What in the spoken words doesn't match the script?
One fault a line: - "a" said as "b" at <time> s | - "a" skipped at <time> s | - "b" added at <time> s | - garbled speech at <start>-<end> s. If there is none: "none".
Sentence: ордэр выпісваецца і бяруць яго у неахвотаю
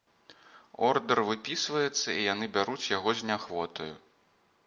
- "яны" added at 2.3 s
- "у" said as "з" at 3.2 s